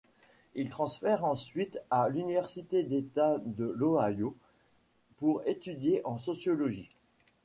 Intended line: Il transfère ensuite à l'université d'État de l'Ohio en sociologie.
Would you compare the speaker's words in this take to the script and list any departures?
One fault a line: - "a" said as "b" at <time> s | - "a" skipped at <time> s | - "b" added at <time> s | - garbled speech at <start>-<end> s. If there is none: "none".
- "pour étudier" added at 5.2 s